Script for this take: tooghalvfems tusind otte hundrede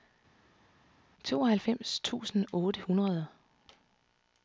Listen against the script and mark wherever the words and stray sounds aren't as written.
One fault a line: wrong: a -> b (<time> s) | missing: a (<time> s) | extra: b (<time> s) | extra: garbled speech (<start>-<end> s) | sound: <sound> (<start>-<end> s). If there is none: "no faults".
no faults